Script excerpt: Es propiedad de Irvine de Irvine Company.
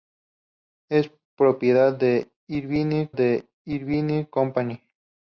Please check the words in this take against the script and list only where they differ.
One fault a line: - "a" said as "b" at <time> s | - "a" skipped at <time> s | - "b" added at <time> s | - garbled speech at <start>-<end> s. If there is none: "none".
none